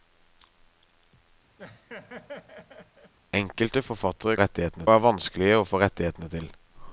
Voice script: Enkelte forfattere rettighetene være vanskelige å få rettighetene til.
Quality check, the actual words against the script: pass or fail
pass